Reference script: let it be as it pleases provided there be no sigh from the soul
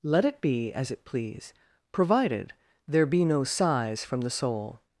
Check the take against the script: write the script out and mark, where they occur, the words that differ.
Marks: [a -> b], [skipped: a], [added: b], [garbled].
let it be as it [pleases -> please] provided there be no [sigh -> sighs] from the soul